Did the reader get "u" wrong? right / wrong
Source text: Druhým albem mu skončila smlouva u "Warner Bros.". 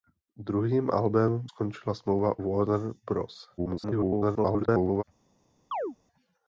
wrong